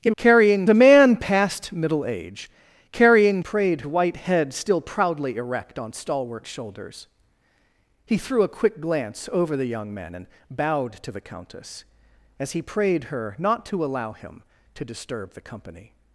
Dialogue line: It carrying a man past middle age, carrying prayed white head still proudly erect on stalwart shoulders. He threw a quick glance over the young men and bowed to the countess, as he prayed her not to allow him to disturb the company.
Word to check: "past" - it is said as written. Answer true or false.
true